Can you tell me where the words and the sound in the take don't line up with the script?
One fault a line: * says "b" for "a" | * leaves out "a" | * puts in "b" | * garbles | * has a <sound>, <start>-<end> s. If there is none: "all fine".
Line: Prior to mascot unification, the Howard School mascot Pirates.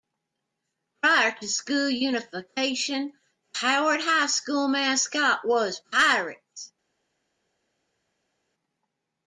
* says "school" for "mascot"
* puts in "High"
* puts in "was"